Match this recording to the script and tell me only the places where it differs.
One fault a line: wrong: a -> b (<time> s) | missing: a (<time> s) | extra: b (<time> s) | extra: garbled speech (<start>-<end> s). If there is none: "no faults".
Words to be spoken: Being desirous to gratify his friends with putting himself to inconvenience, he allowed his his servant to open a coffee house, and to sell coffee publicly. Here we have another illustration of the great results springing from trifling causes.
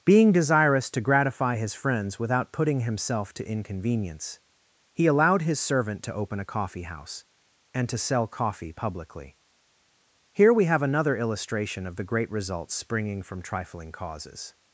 wrong: with -> without (2.2 s)
missing: his (5.6 s)